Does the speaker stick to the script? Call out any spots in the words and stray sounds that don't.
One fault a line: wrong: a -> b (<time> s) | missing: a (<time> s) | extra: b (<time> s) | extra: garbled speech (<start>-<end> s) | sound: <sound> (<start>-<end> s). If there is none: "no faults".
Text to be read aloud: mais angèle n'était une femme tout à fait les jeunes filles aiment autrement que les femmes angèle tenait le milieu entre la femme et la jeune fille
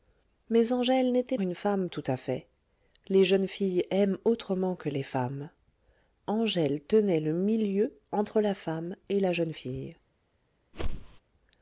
sound: whoosh (10.7-11.2 s)